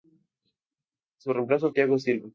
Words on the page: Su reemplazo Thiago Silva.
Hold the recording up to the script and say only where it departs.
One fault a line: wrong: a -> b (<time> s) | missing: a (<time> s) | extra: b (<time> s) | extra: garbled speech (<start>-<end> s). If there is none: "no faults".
no faults